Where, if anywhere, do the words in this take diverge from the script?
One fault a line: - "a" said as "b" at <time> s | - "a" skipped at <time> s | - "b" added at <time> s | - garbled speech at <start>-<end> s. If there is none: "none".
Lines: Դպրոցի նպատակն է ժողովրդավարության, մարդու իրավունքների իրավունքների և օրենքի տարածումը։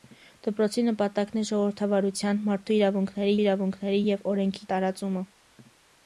none